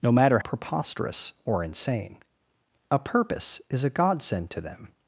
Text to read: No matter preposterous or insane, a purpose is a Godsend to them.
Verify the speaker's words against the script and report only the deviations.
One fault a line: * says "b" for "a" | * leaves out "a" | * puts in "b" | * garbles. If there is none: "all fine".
all fine